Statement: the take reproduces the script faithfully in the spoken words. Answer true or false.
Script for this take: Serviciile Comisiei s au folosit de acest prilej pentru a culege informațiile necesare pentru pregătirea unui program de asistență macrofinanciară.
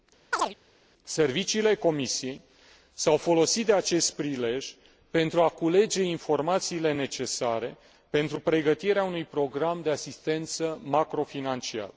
true